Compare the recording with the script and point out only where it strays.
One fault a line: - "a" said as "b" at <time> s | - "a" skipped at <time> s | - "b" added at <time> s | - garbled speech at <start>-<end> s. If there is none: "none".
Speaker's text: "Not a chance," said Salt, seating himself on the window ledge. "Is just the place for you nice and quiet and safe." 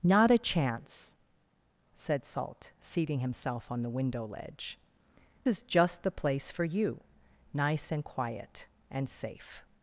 none